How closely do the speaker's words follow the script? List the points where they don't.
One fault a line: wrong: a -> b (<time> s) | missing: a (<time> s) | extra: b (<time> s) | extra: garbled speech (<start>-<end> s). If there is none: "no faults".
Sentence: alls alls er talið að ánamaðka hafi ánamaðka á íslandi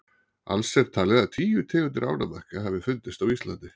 missing: alls (0.7 s)
extra: tíu tegundir (1.4 s)
wrong: ánamaðka -> fundist (2.9 s)